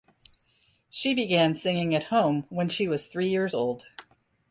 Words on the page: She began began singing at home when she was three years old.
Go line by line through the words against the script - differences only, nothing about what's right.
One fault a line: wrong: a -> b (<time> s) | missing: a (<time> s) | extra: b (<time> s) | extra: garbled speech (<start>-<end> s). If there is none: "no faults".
missing: began (1.5 s)